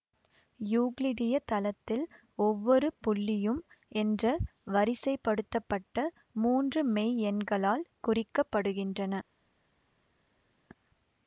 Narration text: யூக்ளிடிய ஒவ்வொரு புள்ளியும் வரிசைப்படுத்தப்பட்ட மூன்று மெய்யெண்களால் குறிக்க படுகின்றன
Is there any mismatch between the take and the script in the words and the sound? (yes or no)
yes